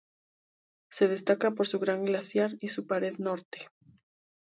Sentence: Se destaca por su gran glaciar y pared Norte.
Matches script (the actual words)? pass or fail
fail